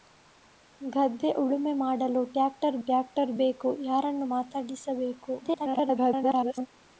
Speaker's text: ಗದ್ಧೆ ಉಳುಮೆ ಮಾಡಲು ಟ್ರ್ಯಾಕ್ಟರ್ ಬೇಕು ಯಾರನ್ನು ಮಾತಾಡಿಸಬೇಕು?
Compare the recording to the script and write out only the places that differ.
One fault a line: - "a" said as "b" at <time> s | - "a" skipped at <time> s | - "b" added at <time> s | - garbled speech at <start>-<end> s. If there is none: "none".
- "ಟ್ರ್ಯಾಕ್ಟರ್" added at 2.8 s
- garbled speech at 5.4-6.7 s